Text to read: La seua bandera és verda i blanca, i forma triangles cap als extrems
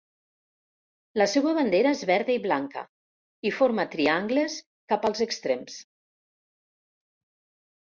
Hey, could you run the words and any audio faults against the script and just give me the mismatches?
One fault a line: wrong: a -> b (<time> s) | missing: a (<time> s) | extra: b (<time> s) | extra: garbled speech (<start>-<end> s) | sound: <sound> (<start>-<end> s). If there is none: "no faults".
no faults